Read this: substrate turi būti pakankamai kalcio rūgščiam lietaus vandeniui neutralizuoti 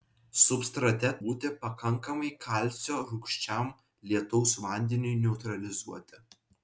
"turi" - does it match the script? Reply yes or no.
no